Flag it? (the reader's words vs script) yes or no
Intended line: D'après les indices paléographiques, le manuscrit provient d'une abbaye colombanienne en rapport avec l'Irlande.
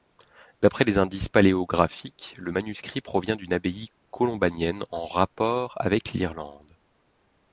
no